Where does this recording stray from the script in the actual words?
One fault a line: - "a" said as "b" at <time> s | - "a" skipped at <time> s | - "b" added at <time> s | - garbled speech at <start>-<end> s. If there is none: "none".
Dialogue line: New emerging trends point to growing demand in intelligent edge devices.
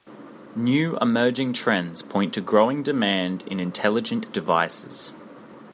- "edge" skipped at 4.2 s